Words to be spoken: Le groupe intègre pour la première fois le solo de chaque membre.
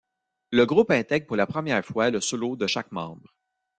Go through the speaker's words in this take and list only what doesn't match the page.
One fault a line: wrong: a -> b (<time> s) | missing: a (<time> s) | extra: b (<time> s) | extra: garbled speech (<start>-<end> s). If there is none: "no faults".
no faults